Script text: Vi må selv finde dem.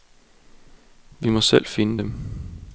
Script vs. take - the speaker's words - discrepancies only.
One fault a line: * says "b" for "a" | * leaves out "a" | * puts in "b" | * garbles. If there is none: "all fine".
all fine